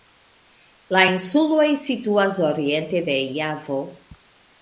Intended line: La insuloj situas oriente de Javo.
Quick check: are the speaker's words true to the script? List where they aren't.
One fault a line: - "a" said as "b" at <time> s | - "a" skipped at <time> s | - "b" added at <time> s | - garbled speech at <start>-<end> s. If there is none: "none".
none